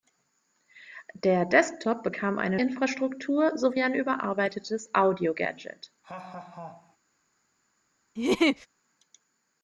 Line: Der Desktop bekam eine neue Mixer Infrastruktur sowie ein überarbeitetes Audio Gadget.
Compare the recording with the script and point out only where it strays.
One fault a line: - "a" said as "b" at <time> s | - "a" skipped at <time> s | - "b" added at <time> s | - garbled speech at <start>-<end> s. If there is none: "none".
- "neue Mixer" skipped at 2.6 s